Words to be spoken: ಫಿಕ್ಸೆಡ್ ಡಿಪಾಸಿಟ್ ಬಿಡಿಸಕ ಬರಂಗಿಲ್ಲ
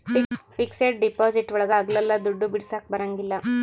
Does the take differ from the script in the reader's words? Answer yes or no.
yes